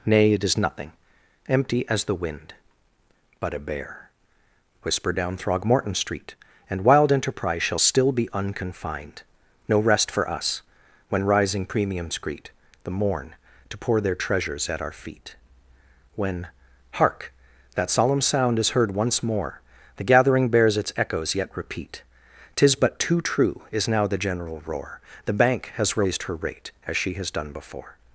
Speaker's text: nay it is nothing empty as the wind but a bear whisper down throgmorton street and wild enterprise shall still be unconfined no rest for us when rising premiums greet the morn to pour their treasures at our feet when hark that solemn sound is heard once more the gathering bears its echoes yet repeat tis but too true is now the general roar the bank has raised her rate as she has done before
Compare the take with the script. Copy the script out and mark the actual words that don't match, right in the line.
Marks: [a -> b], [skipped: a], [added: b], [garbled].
nay it is nothing empty as the wind but a bear whisper down throgmorton street and wild enterprise shall still be unconfined no rest for us when rising premiums greet the morn to pour their treasures at our feet when hark that solemn sound is heard once more the gathering bears its echoes yet repeat tis but too true is now the general roar the bank has raised her rate as she has done before